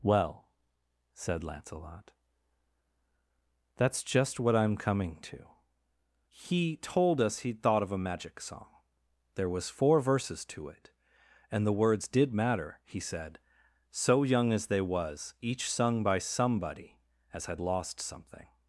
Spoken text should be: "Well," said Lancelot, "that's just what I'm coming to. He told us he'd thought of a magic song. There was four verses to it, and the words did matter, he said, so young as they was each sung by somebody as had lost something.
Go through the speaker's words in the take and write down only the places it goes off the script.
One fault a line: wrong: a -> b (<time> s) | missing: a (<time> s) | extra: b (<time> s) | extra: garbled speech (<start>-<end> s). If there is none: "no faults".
no faults